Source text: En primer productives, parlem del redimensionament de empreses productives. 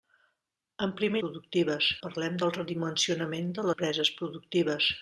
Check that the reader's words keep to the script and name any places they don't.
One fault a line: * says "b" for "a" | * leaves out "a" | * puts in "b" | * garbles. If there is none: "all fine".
all fine